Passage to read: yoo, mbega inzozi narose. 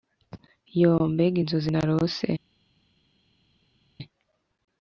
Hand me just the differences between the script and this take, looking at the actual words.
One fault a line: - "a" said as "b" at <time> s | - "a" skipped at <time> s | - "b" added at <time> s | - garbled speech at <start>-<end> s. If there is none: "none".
none